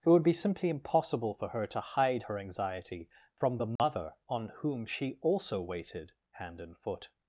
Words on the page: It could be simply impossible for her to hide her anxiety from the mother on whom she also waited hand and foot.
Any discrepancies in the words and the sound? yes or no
yes